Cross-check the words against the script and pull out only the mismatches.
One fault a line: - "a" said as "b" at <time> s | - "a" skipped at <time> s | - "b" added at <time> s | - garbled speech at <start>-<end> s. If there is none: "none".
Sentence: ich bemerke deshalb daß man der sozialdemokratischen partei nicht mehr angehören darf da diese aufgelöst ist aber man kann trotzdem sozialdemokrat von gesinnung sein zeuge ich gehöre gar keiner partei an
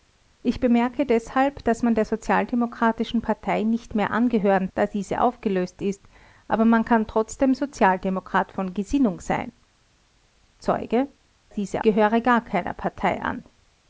- "darf" skipped at 4.7 s
- "ich" said as "diese" at 11.5 s